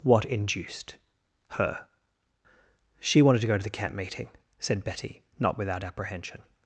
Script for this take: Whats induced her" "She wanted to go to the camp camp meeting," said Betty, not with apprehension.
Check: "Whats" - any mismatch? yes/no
yes